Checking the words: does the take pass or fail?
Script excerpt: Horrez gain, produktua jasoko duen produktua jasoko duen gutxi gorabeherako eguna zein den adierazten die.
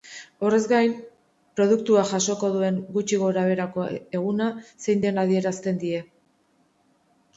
fail